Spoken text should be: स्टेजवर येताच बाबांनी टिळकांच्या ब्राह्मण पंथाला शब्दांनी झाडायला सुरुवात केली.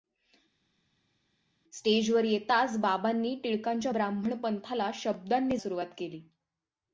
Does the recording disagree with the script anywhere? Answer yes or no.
yes